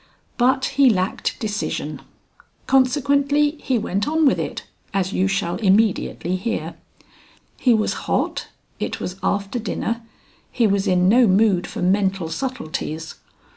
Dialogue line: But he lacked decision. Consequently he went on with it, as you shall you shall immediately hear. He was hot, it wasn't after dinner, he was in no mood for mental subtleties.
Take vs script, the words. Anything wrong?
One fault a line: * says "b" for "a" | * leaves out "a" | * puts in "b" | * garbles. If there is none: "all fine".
* leaves out "you shall"
* says "was" for "wasn't"